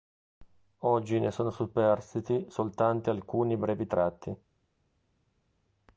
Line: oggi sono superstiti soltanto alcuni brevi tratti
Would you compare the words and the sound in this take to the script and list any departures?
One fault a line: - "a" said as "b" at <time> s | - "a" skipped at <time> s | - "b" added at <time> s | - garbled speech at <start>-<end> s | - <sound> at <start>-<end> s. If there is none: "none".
- "ne" added at 1.2 s